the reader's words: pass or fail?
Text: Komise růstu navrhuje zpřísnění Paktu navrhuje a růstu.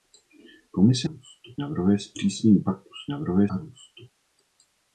pass